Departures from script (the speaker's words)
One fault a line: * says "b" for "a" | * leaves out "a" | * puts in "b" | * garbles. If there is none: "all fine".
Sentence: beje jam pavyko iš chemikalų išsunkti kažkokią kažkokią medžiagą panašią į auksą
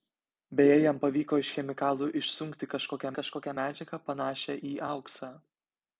all fine